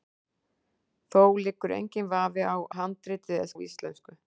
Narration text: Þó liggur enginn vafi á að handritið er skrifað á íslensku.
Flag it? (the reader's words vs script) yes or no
yes